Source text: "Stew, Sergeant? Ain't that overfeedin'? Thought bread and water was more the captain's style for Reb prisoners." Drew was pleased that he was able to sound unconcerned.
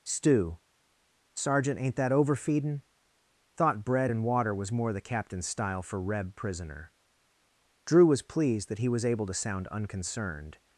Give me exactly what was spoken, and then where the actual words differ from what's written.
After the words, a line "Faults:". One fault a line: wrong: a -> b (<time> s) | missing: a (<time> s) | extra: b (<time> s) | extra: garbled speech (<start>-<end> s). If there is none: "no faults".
"Stew, Sergeant? Ain't that overfeedin'? Thought bread and water was more the captain's style for Reb prisoner." Drew was pleased that he was able to sound unconcerned.
Faults:
wrong: prisoners -> prisoner (6.3 s)